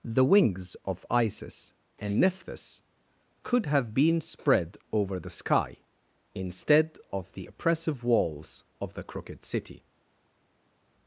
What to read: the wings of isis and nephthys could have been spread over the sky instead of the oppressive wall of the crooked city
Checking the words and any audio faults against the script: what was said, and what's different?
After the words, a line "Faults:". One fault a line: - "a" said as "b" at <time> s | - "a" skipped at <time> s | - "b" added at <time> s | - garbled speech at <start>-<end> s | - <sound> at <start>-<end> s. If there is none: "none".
the wings of isis and nephthys could have been spread over the sky instead of the oppressive walls of the crooked city
Faults:
- "wall" said as "walls" at 8.0 s